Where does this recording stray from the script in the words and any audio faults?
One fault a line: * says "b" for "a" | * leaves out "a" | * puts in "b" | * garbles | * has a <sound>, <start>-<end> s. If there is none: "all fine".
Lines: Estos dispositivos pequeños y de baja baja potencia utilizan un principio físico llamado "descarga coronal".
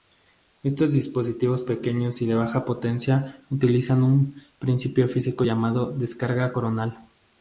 * leaves out "baja"